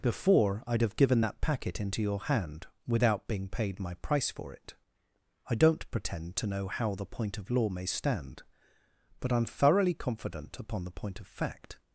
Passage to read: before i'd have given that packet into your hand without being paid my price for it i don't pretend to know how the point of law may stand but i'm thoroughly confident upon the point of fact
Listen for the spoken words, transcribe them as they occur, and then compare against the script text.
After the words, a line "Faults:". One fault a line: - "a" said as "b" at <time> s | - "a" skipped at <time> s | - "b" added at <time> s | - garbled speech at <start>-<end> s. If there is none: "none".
before i'd have given that packet into your hand without being paid my price for it i don't pretend to know how the point of law may stand but i'm thoroughly confident upon the point of fact
Faults:
none